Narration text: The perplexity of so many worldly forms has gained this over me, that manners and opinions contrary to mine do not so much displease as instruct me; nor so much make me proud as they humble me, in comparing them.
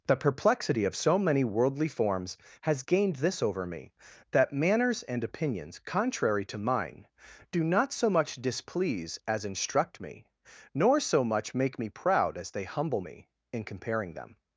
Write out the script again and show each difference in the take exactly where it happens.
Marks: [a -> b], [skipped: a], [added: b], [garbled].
The perplexity of so many worldly forms has gained this over me, that manners and opinions contrary to mine do not so much displease as instruct me; nor so much make me proud as they humble me, in comparing them.